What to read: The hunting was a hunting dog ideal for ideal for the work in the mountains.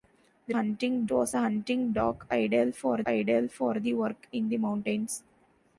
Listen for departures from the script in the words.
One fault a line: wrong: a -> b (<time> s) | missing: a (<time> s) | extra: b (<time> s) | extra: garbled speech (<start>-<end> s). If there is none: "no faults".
no faults